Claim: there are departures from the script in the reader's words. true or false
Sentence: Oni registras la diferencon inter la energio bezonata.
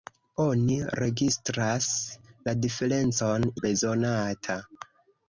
true